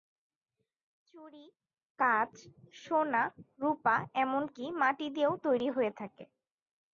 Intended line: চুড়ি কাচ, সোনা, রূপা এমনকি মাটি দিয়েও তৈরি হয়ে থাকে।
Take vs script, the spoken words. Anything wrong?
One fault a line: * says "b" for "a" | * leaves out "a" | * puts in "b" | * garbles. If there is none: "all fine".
all fine